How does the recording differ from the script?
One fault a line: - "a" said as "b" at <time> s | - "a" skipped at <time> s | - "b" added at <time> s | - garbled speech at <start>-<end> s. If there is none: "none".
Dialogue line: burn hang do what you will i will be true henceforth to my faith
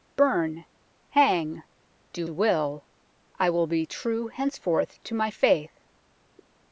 - "what" skipped at 2.2 s